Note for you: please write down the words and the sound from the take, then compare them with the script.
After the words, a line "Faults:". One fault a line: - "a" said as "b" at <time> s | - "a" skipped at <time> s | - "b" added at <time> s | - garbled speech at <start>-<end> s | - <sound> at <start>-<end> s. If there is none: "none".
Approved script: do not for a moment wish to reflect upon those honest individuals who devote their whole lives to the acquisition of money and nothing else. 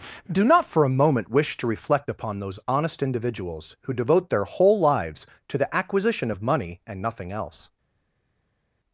do not for a moment wish to reflect upon those honest individuals who devote their whole lives to the acquisition of money and nothing else.
Faults:
none